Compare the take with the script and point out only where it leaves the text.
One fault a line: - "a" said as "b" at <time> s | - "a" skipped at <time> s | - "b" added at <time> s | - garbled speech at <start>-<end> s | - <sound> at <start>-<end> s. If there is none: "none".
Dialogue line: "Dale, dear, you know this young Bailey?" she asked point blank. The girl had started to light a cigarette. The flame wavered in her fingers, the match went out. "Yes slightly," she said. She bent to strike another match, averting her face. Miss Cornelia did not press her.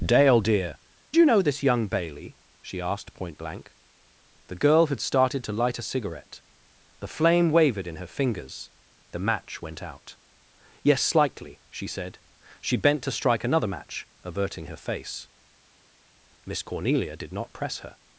none